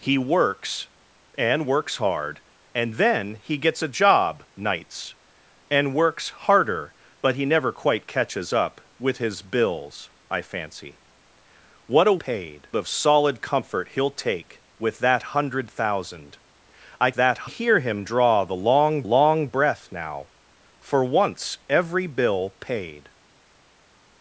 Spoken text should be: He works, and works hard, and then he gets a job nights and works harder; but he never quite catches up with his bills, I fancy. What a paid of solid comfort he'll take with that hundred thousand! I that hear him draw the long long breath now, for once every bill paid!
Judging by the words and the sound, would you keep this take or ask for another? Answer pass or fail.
pass